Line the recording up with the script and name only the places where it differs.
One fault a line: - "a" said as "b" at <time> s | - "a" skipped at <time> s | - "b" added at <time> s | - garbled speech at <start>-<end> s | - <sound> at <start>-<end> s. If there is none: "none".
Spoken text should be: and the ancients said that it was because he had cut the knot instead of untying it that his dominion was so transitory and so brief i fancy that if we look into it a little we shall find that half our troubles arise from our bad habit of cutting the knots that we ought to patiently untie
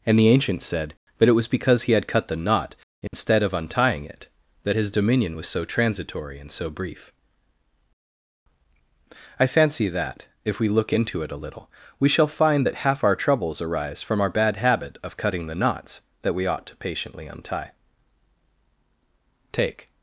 - dropout at 3.1-3.1 s
- "take" added at 19.5 s